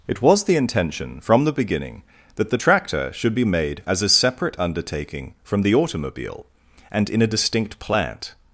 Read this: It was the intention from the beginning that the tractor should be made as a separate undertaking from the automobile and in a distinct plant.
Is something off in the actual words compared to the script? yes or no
no